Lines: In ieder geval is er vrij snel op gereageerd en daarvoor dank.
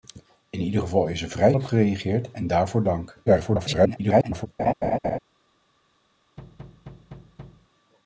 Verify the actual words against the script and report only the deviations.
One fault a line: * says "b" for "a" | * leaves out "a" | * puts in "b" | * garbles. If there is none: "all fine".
* leaves out "snel"
* garbles